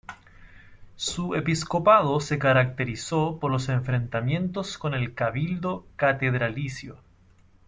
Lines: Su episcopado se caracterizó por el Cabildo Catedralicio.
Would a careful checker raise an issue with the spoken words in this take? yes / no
yes